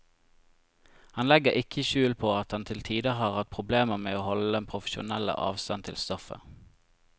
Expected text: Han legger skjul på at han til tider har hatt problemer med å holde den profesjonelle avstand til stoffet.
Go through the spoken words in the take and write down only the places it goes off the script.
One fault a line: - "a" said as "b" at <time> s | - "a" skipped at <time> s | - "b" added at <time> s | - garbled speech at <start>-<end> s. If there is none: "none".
- "ikke" added at 1.6 s